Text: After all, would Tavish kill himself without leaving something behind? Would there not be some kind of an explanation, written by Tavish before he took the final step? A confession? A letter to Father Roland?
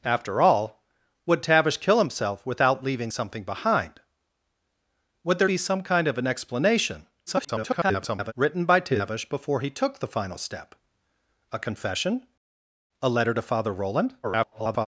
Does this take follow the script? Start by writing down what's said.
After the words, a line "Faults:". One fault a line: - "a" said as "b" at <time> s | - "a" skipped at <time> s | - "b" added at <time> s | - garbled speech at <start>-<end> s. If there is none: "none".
After all, would Tavish kill himself without leaving something behind? Would there be some kind of an explanation, [garbled] written by Tavish before he took the final step? A confession? A letter to Father Roland? [garbled]
Faults:
- "not" skipped at 5.5 s
- garbled speech at 7.3-8.3 s
- garbled speech at 14.2-14.9 s